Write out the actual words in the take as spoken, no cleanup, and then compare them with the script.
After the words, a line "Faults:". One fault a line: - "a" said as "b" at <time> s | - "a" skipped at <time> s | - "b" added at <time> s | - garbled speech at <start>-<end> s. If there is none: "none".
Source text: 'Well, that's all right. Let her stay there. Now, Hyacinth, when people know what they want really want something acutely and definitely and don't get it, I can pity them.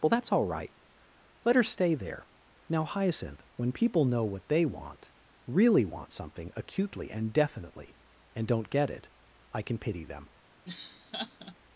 'Well, that's all right. Let her stay there. Now, Hyacinth, when people know what they want really want something acutely and definitely and don't get it, I can pity them.
Faults:
none